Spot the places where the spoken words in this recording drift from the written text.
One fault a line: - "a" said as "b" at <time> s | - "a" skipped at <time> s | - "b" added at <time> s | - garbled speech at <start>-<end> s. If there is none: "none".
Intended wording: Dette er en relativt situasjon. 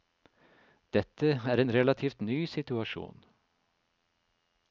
- "ny" added at 2.2 s